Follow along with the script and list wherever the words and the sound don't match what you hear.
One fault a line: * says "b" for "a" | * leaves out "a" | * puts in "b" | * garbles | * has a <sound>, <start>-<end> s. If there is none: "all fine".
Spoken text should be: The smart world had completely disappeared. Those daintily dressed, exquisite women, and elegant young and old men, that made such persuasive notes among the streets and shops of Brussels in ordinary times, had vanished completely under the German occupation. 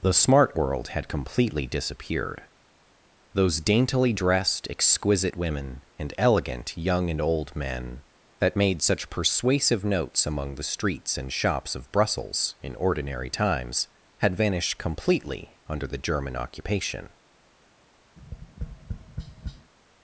* has a tap, 18.2-19.7 s